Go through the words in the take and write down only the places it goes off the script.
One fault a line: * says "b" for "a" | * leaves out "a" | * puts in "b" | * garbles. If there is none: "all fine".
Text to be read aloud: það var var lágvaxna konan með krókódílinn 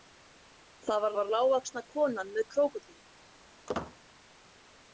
all fine